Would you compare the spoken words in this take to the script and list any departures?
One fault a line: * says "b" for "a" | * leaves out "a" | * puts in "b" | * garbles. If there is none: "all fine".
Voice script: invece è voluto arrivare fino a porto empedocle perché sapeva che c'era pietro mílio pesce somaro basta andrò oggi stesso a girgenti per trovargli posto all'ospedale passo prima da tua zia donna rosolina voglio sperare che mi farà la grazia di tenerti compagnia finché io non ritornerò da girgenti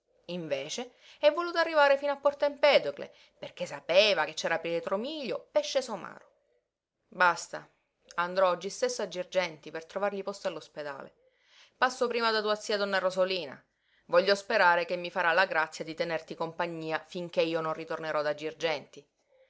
all fine